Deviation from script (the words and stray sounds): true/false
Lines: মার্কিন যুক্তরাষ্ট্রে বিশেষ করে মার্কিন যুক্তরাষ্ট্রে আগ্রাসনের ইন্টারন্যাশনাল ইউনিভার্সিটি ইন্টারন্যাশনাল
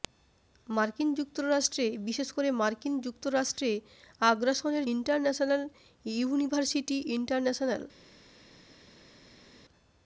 false